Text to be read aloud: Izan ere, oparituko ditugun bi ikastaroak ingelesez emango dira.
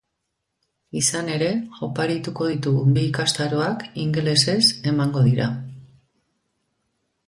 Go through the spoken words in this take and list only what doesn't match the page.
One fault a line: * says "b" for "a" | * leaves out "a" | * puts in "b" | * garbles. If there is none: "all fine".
all fine